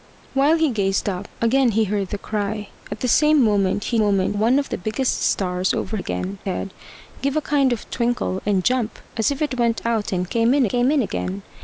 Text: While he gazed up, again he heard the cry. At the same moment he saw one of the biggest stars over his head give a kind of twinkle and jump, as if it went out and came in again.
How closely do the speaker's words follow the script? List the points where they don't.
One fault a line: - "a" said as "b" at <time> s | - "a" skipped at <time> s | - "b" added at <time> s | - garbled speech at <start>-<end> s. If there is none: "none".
- "saw" said as "moment" at 4.0 s
- "his" said as "again" at 6.0 s
- "came in" added at 10.7 s